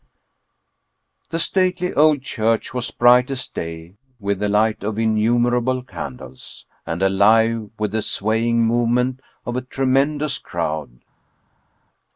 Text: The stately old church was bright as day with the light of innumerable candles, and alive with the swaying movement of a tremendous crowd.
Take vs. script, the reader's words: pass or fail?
pass